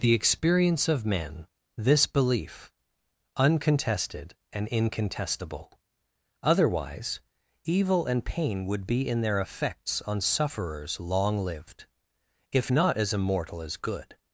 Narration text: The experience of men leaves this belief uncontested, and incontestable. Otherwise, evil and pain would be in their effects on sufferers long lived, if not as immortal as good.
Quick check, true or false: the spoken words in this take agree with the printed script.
false